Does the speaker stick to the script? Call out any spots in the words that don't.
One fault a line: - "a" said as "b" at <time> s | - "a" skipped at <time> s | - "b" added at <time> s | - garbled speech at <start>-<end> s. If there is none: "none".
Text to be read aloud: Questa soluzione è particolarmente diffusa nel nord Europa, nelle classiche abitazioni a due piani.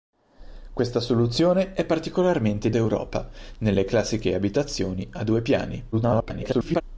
- "diffusa nel nord" skipped at 2.7 s
- garbled speech at 5.9-6.8 s